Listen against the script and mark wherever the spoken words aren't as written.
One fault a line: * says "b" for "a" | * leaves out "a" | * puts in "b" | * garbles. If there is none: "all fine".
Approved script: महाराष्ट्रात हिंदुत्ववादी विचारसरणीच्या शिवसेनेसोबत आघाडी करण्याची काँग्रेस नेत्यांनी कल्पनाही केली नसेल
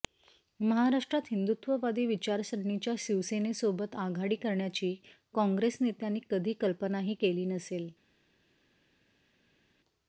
* puts in "कधी"